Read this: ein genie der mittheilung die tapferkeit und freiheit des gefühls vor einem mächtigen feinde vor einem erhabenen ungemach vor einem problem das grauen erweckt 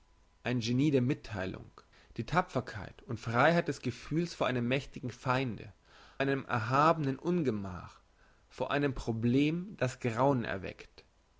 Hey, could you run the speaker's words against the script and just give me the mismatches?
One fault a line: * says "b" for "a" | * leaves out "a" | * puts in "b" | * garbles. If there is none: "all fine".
* leaves out "vor"